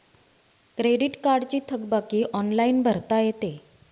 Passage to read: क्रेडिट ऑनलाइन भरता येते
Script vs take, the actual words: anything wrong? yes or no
yes